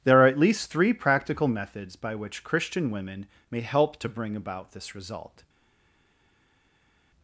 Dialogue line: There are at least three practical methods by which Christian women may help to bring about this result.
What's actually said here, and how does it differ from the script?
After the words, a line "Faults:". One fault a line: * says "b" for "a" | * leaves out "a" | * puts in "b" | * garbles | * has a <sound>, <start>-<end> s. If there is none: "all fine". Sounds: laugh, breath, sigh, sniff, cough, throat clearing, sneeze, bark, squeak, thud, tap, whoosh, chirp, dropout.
There are at least three practical methods by which Christian women may help to bring about this result.
Faults:
all fine